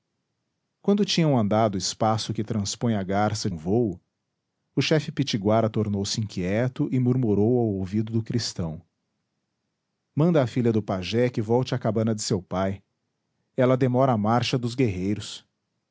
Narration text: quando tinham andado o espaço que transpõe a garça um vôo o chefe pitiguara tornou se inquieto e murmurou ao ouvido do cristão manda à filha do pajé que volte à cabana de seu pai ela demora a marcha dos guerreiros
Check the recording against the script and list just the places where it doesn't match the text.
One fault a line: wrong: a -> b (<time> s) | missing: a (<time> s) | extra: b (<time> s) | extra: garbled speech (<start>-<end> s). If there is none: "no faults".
no faults